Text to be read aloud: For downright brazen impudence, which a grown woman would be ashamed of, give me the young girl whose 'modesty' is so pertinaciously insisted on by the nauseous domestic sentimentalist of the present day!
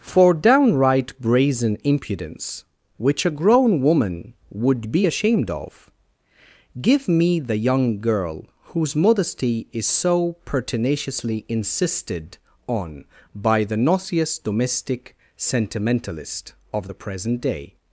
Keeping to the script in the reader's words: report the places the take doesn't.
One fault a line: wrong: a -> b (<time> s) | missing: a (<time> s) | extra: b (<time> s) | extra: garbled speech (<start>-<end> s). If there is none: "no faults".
no faults